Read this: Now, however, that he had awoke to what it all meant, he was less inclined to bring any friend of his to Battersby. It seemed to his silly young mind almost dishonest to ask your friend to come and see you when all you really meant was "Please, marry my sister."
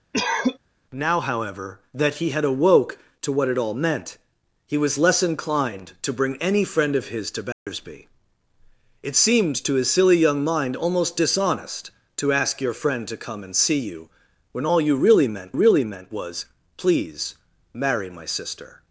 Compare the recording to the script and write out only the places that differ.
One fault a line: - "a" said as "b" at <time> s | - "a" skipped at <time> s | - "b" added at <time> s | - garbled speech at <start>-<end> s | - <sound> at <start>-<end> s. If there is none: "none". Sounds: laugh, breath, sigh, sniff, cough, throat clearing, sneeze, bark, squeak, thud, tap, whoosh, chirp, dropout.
- cough at 0.1-0.6 s
- dropout at 7.5-7.7 s
- "really meant" added at 15.5 s